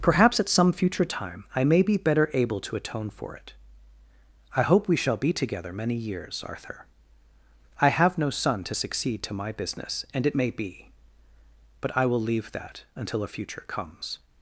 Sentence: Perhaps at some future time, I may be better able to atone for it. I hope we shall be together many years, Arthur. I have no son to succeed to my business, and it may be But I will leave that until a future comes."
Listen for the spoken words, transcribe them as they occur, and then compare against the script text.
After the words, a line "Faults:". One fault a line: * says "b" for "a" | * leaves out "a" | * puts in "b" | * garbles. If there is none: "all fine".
Perhaps at some future time, I may be better able to atone for it. I hope we shall be together many years, Arthur. I have no son to succeed to my business, and it may be But I will leave that until a future comes."
Faults:
all fine